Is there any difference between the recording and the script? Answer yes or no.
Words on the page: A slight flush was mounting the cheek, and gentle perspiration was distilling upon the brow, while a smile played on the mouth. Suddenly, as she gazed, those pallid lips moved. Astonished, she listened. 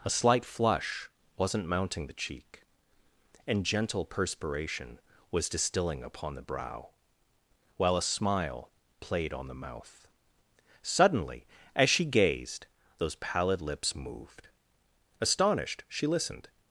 yes